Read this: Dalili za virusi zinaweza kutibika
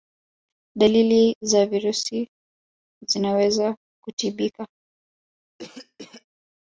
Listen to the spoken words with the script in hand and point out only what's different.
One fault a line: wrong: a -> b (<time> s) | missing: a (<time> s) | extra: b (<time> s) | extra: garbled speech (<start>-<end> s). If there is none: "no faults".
no faults